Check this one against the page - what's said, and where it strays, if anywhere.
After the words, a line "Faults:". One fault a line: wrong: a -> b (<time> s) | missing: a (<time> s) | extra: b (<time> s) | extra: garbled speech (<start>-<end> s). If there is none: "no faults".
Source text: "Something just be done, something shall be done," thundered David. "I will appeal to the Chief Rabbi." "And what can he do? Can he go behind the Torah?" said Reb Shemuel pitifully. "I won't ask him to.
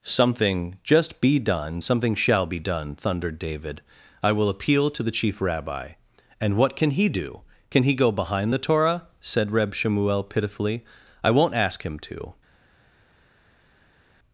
"Something just be done, something shall be done," thundered David. "I will appeal to the Chief Rabbi." "And what can he do? Can he go behind the Torah?" said Reb Shemuel pitifully. "I won't ask him to.
Faults:
no faults